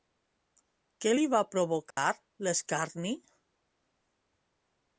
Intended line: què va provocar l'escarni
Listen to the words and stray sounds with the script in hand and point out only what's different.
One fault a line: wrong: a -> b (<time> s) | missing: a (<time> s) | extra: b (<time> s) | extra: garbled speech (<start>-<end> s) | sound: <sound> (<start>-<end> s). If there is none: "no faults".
extra: li (1.2 s)
sound: dropout (1.9-2.0 s)